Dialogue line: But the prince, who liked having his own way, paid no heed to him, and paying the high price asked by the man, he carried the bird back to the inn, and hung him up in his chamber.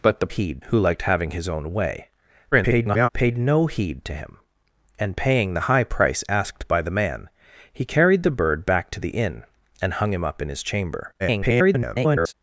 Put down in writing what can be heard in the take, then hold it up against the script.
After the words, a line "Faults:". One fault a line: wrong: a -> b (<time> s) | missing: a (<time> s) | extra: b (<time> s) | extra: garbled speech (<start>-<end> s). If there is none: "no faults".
But the heed, who liked having his own way, [garbled] paid no heed to him, and paying the high price asked by the man, he carried the bird back to the inn, and hung him up in his chamber. [garbled]
Faults:
wrong: prince -> heed (0.3 s)
extra: garbled speech (2.5-3.1 s)
extra: garbled speech (11.2-12.3 s)